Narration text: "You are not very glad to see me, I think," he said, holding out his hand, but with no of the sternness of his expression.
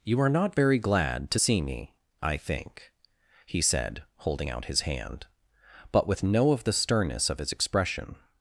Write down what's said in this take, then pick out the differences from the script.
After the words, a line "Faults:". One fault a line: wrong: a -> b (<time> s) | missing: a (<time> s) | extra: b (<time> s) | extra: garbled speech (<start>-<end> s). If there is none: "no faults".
"You are not very glad to see me, I think," he said, holding out his hand, but with no of the sternness of his expression.
Faults:
no faults